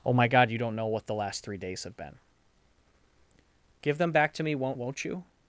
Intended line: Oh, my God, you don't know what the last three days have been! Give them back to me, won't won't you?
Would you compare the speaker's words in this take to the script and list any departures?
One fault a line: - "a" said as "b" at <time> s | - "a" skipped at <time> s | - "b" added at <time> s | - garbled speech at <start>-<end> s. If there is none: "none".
none